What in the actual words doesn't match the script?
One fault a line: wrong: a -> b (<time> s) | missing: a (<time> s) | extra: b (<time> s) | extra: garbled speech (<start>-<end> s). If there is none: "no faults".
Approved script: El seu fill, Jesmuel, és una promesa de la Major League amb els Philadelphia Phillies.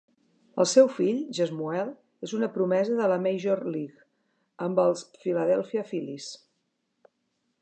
no faults